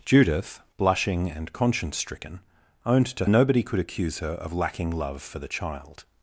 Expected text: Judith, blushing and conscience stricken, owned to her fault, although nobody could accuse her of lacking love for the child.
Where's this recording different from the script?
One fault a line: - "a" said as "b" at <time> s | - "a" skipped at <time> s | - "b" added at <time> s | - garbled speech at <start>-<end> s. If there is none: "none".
- "her fault although" skipped at 3.2 s